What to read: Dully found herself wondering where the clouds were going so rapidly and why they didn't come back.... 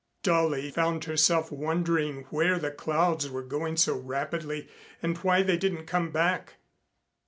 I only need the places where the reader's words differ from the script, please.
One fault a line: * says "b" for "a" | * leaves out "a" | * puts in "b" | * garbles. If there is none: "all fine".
all fine